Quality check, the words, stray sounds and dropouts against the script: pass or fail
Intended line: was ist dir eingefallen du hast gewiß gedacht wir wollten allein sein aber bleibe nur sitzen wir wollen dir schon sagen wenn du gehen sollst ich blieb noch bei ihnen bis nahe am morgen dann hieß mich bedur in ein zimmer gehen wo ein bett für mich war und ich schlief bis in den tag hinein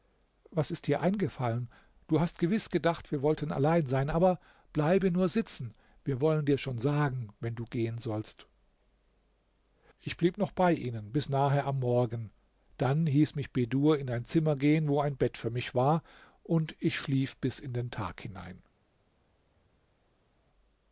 pass